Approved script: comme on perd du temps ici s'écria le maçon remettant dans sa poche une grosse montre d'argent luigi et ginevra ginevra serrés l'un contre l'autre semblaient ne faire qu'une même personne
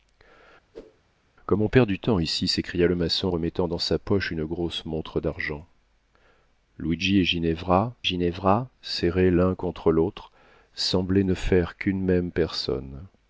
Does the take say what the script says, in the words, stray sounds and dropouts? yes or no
no